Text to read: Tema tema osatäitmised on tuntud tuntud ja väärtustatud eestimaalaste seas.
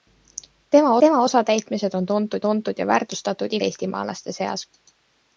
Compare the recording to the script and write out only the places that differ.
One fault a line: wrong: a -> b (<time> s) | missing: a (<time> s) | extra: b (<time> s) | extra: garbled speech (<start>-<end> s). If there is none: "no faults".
no faults